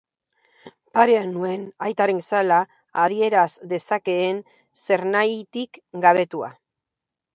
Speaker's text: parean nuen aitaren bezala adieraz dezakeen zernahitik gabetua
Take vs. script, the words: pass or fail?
pass